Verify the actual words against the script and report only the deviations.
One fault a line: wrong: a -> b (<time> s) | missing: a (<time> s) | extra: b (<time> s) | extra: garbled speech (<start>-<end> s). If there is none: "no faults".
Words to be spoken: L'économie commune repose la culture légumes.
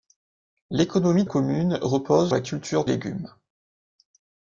no faults